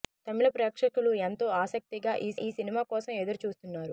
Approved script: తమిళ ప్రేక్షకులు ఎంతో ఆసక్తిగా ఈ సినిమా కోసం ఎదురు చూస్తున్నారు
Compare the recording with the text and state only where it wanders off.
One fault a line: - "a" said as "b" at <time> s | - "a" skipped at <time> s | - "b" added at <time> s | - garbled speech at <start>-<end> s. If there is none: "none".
- "ఈ" added at 2.4 s